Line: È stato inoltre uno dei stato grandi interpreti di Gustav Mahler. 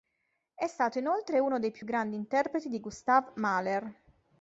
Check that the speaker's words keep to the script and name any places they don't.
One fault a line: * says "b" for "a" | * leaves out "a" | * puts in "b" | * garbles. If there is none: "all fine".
* says "più" for "stato"